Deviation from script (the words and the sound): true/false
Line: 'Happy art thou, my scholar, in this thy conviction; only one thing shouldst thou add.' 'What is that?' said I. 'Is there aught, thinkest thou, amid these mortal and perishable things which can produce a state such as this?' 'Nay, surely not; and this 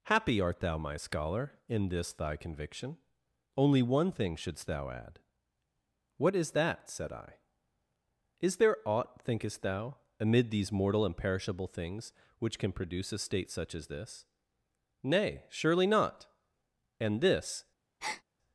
true